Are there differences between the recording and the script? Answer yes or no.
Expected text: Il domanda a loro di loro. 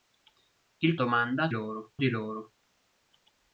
no